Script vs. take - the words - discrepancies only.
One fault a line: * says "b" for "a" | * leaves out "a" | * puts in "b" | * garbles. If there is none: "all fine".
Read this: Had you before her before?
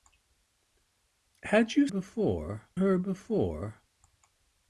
all fine